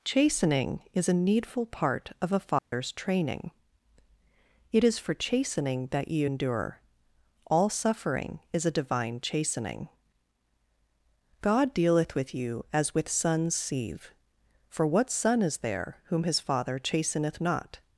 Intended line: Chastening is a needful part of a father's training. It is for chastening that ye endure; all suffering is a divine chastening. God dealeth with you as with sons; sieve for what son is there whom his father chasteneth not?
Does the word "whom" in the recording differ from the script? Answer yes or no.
no